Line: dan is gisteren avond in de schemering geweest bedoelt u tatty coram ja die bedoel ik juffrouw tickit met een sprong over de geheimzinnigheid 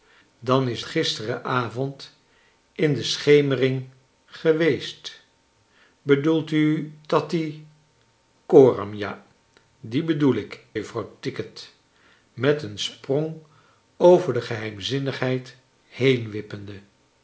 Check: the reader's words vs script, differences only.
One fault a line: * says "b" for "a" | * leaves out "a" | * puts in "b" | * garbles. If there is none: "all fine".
all fine